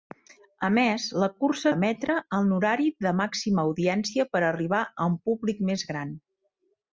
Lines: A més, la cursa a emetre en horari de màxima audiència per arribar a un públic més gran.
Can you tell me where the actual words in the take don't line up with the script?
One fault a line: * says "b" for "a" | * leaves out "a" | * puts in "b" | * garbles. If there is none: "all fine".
all fine